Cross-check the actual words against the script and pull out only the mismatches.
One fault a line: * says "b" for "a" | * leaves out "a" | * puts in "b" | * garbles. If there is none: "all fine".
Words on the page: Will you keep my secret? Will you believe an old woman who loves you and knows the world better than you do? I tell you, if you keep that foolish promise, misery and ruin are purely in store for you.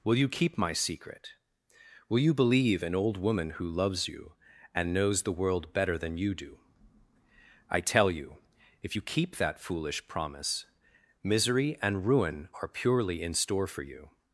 all fine